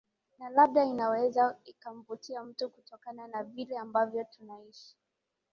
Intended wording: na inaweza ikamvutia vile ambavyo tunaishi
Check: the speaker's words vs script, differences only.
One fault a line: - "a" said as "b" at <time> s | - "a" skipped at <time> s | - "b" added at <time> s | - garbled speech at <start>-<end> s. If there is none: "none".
- "labda" added at 0.5 s
- "mtu kutokana na" added at 2.4 s